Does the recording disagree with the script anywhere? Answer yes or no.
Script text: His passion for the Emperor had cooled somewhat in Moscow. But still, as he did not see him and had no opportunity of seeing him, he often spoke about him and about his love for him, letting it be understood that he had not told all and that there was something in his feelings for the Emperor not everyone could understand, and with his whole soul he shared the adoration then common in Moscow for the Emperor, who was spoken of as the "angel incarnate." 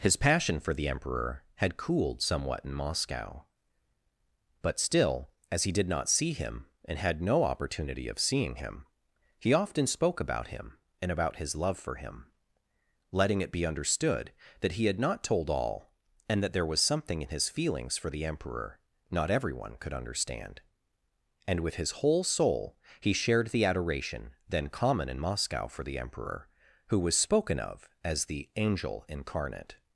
no